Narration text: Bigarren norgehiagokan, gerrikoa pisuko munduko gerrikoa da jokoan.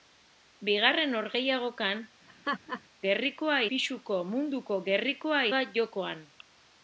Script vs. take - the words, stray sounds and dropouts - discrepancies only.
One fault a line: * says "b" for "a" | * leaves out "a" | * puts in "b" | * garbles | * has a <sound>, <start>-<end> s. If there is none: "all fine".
* has a laugh, 2.3-2.8 s